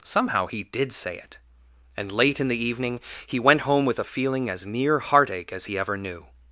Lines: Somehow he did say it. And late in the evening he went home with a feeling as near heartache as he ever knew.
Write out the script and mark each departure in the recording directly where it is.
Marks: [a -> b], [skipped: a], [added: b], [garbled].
Somehow he did say it. And late in the evening he went home with a feeling as near heartache as he ever knew.